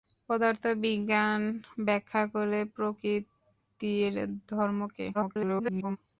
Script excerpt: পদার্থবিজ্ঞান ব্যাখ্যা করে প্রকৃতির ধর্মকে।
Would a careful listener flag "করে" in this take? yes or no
no